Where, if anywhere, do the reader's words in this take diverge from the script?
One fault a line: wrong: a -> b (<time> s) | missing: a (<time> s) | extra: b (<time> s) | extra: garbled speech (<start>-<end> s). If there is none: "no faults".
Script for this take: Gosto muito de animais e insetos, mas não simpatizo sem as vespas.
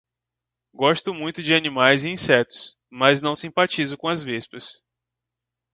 wrong: sem -> com (4.0 s)